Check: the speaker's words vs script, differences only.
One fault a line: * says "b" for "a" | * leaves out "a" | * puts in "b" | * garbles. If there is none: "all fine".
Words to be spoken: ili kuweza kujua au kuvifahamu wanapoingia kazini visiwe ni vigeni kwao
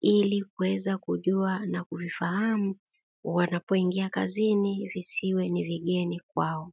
* says "na" for "au"